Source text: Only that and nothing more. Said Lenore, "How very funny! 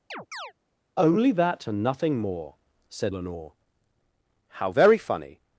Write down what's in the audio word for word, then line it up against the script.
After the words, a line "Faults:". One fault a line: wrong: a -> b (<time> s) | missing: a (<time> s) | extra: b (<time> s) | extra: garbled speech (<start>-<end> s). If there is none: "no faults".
Only that and nothing more. Said Lenore, "How very funny!
Faults:
no faults